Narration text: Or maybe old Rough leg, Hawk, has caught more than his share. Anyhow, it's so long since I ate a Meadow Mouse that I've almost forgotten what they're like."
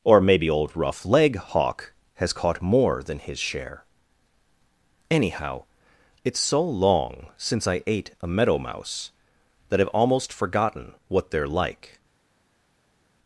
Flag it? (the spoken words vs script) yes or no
no